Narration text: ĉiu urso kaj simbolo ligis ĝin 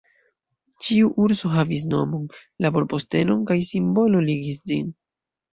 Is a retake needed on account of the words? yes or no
yes